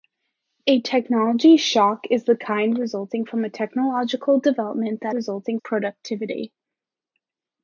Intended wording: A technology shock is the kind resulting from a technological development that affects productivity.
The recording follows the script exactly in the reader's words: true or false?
false